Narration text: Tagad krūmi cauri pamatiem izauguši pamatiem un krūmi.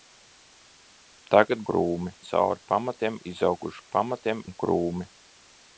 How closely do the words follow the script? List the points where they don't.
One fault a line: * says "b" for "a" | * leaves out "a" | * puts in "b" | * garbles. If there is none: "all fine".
all fine